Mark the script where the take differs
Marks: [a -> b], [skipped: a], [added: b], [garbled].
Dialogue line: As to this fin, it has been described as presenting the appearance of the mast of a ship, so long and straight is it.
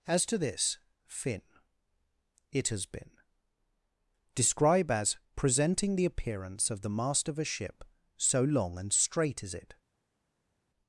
As to this fin, it has been [described -> describe] as presenting the appearance of the mast of a ship, so long and straight is it.